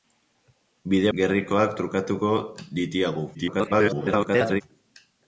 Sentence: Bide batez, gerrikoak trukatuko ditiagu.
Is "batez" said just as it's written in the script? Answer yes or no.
no